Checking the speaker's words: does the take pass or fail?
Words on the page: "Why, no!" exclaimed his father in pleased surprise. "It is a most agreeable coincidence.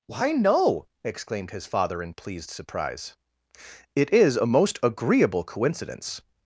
pass